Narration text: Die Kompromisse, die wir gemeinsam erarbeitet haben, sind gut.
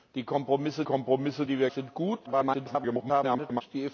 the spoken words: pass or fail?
fail